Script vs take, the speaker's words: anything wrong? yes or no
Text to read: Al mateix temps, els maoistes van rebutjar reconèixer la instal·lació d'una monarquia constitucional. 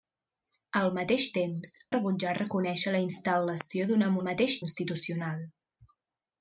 yes